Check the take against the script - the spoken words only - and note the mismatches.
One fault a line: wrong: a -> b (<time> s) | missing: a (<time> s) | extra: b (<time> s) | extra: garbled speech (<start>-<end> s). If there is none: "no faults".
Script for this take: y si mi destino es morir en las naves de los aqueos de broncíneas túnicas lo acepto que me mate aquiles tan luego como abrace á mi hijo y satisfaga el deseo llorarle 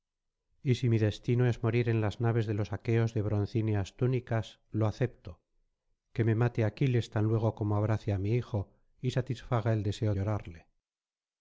no faults